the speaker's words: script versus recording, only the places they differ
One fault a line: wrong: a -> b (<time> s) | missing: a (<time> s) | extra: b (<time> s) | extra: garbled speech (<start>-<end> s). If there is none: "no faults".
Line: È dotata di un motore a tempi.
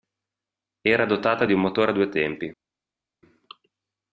wrong: È -> Era (0.8 s)
extra: due (1.9 s)